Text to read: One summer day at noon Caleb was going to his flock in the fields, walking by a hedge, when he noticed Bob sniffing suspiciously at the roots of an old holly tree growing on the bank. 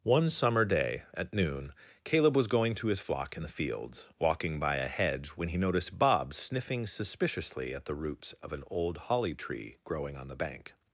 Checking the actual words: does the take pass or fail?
pass